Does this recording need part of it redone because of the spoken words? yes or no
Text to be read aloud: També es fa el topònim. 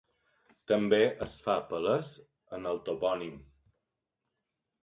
yes